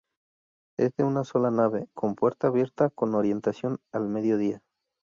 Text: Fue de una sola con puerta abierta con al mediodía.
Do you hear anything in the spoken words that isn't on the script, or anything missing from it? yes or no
yes